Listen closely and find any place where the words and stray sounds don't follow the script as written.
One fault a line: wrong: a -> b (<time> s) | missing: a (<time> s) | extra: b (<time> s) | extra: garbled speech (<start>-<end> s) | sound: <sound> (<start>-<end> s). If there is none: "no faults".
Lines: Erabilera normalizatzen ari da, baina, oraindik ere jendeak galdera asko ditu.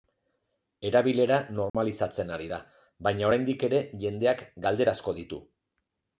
sound: dropout (1.7-1.7 s)